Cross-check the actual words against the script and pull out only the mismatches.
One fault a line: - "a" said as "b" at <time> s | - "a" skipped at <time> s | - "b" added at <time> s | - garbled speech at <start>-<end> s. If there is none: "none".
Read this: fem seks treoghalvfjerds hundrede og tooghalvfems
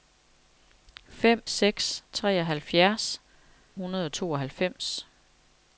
none